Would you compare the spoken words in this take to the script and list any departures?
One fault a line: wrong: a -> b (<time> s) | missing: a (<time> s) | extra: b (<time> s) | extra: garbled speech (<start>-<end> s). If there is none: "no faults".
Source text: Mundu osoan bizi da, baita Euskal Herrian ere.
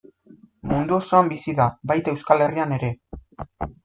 no faults